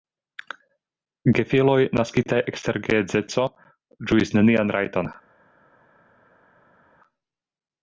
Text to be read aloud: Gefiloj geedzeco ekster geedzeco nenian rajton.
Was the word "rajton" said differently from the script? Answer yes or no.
no